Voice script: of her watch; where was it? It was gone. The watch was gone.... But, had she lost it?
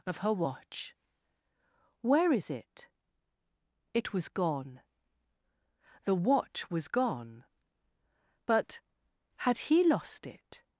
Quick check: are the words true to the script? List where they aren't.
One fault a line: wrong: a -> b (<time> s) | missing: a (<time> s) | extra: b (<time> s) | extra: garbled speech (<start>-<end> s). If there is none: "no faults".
wrong: was -> is (2.3 s)
wrong: she -> he (9.6 s)